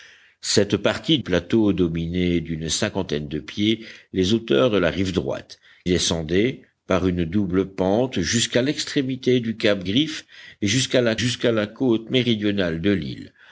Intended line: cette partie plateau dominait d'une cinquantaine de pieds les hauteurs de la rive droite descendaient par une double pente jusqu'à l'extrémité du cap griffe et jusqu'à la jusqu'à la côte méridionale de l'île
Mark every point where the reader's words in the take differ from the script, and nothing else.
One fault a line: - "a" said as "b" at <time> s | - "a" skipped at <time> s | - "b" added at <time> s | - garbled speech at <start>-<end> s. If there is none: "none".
none